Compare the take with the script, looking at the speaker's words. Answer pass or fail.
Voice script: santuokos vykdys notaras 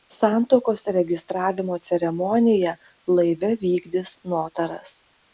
fail